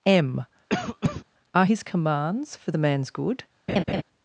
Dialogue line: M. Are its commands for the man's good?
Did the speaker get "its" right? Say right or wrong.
wrong